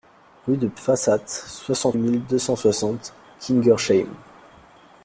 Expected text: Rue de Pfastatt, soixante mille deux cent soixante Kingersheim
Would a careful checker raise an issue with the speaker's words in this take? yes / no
no